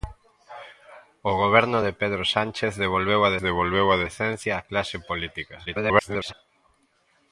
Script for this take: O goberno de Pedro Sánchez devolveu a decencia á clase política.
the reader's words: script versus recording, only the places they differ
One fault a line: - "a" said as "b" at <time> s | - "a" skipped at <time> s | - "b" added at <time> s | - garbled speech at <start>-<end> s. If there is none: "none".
- "devolveu a" added at 3.5 s
- garbled speech at 5.7-6.3 s